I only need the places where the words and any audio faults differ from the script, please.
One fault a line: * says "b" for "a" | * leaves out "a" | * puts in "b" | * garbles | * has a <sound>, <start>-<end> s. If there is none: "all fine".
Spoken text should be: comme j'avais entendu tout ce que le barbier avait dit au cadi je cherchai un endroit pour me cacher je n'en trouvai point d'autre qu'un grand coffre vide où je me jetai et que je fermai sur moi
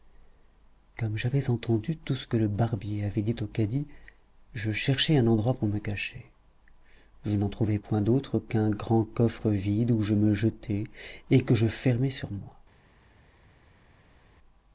all fine